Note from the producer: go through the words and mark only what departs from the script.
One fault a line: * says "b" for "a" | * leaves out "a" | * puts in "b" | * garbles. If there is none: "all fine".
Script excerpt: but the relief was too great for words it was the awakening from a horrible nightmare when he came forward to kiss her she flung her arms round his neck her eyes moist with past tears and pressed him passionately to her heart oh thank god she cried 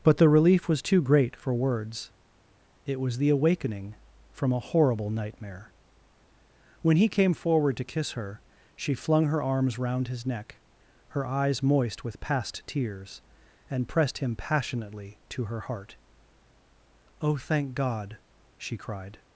all fine